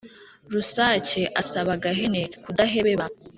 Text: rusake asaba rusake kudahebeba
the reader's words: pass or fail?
fail